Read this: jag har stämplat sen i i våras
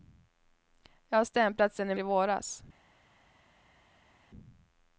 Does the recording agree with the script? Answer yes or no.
yes